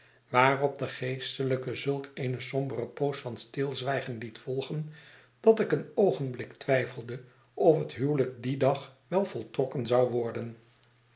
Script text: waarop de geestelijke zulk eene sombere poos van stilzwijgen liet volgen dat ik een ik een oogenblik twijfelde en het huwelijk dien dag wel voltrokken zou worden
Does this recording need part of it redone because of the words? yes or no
yes